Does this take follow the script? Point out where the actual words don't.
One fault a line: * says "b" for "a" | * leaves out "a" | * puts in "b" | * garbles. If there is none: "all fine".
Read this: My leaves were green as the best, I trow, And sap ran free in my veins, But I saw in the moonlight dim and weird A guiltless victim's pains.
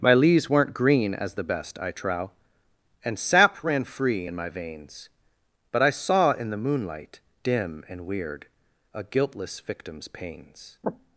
* says "weren't" for "were"